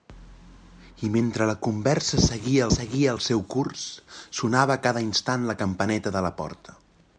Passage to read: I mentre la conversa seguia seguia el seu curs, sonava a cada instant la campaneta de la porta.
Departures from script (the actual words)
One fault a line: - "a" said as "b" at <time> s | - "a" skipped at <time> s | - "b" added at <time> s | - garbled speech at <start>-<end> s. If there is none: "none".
none